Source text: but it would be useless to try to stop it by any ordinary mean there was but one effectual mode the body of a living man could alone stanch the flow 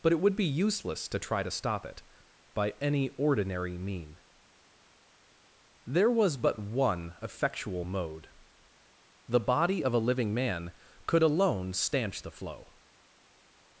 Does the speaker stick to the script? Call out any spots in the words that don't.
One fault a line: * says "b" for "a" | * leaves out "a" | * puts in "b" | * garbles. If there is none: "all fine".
all fine